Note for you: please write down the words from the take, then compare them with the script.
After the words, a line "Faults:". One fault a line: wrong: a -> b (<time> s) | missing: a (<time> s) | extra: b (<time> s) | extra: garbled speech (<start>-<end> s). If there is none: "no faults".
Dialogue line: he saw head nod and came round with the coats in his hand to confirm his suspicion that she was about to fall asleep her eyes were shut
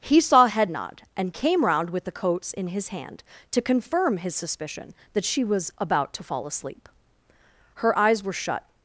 he saw head nod and came round with the coats in his hand to confirm his suspicion that she was about to fall asleep her eyes were shut
Faults:
no faults